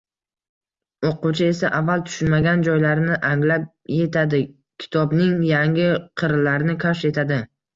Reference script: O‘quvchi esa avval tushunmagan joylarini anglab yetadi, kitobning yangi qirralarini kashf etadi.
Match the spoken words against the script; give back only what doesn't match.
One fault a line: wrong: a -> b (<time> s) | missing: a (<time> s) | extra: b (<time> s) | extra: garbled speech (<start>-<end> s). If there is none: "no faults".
no faults